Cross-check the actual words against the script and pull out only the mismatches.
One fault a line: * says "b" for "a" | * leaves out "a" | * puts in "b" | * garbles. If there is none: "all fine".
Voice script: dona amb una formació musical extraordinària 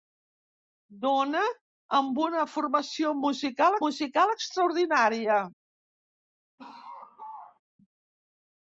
* puts in "musical"